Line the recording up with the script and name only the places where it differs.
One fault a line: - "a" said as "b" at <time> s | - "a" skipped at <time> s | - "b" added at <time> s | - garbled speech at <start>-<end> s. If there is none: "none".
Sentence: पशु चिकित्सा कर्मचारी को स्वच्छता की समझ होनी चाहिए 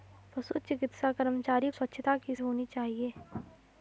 - "को" skipped at 1.7 s
- "समझ" skipped at 2.4 s